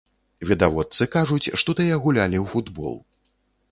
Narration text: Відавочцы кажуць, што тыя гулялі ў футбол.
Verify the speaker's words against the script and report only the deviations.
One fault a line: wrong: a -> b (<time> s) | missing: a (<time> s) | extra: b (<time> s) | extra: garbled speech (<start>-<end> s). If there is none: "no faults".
no faults